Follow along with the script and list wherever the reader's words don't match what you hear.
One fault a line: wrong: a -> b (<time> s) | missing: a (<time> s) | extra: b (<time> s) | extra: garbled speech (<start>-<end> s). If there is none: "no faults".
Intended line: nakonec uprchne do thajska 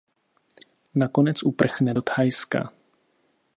no faults